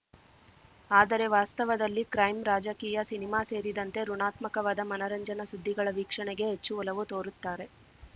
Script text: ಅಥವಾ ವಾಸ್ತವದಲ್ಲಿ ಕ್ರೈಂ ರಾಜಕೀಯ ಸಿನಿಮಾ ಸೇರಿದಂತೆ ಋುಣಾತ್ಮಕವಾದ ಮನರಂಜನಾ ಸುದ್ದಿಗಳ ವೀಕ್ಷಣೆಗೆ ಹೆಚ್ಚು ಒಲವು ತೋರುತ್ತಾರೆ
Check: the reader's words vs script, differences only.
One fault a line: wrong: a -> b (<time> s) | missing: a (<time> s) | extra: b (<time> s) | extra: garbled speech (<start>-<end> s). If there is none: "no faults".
wrong: ಅಥವಾ -> ಆದರೆ (0.9 s)